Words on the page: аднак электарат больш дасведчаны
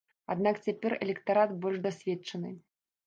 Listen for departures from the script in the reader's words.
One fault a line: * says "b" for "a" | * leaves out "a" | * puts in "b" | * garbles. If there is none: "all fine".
* puts in "цяпер"